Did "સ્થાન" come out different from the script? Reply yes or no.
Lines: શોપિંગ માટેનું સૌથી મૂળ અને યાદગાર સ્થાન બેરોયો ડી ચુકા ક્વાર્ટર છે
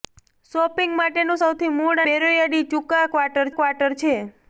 yes